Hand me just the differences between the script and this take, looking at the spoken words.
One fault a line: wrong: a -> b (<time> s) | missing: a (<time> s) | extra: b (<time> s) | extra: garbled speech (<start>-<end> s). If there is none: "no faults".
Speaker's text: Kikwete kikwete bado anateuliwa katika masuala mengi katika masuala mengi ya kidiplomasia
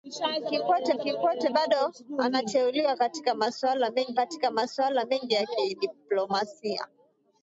no faults